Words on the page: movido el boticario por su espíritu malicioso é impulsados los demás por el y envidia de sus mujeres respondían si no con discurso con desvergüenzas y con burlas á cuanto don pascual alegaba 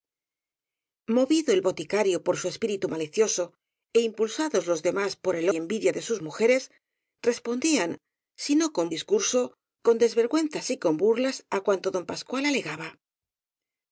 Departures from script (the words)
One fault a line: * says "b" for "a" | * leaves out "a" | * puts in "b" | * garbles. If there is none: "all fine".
all fine